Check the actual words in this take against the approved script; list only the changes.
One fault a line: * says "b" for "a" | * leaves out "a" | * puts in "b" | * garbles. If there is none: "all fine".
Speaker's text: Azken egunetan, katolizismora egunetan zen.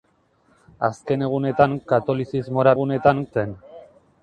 all fine